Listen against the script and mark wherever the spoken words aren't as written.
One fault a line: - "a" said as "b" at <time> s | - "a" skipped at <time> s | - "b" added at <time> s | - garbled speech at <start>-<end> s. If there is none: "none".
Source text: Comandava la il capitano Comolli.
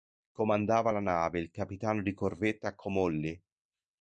- "nave" added at 1.0 s
- "di corvetta" added at 2.0 s